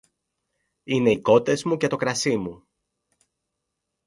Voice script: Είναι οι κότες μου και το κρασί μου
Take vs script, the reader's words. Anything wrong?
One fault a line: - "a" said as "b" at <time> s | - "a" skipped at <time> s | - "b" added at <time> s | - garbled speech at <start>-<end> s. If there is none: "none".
none